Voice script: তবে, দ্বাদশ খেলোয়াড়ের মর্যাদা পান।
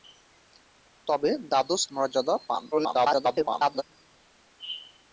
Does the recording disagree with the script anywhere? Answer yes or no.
yes